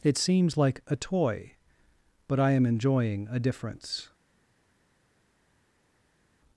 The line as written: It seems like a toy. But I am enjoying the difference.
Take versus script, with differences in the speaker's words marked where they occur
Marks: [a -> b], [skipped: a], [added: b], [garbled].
It seems like a toy. But I am enjoying [the -> a] difference.